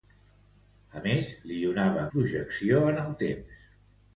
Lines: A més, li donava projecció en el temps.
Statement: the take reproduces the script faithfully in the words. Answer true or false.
true